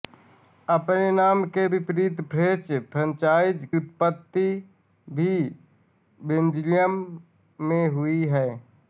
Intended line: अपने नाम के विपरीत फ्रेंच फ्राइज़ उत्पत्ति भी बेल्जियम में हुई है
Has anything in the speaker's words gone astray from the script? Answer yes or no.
no